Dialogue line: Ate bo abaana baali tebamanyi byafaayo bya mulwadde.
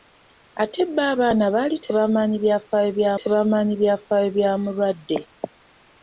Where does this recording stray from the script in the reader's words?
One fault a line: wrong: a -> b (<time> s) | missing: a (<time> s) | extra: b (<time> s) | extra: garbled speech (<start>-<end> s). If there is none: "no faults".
extra: tebamanyi byafaayo bya (3.2 s)